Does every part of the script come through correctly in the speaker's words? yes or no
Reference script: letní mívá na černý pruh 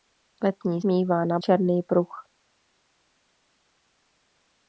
yes